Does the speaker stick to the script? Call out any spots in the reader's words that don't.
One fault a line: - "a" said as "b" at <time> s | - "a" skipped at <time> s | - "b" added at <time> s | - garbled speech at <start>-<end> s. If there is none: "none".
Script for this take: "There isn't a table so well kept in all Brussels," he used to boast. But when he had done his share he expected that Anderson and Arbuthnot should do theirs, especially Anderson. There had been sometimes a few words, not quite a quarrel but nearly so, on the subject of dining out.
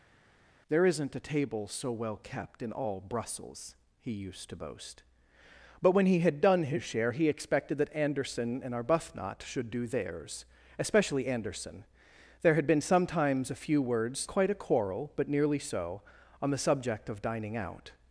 - "not" skipped at 14.3 s